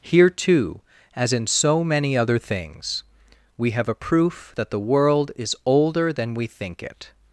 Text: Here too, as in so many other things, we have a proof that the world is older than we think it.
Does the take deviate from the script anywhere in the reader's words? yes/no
no